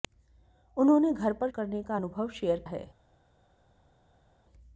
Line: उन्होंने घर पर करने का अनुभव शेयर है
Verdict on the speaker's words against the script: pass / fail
pass